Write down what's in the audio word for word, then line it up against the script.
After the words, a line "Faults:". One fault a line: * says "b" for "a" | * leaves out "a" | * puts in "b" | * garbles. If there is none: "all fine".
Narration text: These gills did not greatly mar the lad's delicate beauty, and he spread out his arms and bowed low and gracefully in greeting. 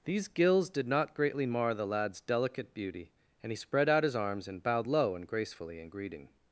These gills did not greatly mar the lad's delicate beauty, and he spread out his arms and bowed low and gracefully in greeting.
Faults:
all fine